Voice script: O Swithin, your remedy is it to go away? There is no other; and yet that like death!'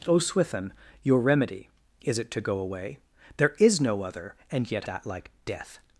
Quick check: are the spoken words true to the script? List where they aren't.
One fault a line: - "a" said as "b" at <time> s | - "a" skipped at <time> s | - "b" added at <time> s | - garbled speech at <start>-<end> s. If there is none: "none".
none